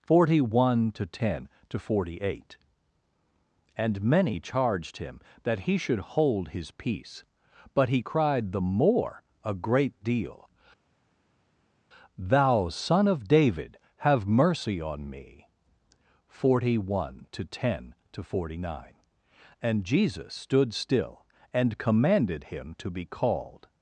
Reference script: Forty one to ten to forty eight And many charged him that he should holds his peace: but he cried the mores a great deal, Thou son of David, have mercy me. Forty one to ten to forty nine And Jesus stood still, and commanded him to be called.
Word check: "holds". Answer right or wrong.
wrong